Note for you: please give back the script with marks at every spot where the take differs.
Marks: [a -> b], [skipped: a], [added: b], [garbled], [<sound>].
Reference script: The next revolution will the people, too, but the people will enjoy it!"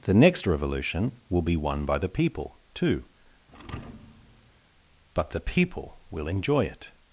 The next revolution will [added: be won by] the people, too, [thud] but the people will enjoy it!"